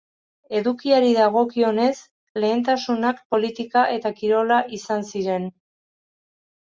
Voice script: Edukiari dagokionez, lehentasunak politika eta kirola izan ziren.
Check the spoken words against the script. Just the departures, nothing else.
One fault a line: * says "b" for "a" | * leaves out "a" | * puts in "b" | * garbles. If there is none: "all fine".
all fine